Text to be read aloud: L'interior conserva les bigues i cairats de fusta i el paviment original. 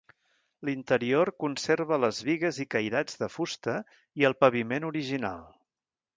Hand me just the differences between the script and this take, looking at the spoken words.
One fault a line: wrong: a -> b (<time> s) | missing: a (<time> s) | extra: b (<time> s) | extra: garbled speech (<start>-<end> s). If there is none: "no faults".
no faults